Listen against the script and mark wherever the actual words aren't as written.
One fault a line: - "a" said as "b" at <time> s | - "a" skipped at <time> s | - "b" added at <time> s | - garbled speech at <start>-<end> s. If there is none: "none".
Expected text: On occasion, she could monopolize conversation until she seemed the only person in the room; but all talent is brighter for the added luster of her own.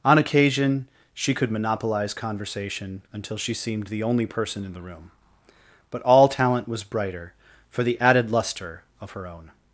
- "is" said as "was" at 6.7 s